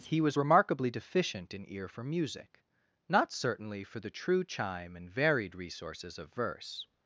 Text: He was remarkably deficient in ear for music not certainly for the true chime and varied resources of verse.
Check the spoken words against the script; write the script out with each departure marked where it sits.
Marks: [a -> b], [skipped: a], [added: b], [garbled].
He was remarkably deficient in ear for music not certainly for the true chime and varied resources of verse.